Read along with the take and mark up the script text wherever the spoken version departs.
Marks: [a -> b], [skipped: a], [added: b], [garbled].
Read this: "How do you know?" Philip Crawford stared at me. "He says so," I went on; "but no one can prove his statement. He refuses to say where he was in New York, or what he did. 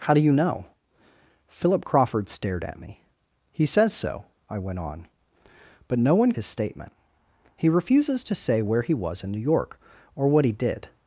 "How do you know?" Philip Crawford stared at me. "He says so," I went on; "but no one [skipped: can prove] his statement. He refuses to say where he was in New York, or what he did.